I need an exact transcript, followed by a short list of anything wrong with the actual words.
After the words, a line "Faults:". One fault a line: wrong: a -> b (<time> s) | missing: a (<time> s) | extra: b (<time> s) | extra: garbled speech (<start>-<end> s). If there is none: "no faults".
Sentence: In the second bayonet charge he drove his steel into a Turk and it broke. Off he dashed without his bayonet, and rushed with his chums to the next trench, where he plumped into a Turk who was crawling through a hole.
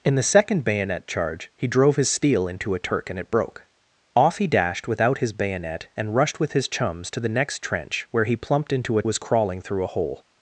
In the second bayonet charge he drove his steel into a Turk and it broke. Off he dashed without his bayonet, and rushed with his chums to the next trench, where he plumped into a Was crawling through a hole.
Faults:
missing: Turk who (9.0 s)